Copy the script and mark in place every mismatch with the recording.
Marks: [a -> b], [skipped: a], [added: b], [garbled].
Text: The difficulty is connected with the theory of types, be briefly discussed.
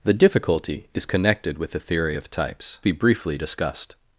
The difficulty is connected with the theory of types, be briefly discussed.